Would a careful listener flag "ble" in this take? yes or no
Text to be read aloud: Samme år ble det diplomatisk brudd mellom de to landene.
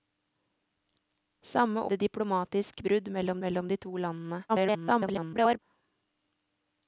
yes